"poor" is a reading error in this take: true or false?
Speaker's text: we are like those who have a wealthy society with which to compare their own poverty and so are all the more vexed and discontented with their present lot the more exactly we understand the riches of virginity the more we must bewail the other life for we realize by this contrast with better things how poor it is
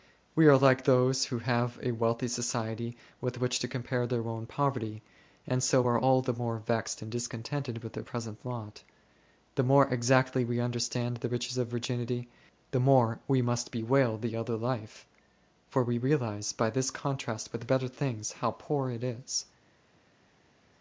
false